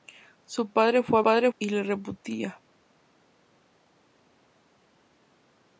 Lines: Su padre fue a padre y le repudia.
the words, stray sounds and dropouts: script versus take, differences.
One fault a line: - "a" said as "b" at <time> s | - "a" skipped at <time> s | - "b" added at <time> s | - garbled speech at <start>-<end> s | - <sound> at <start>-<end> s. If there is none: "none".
none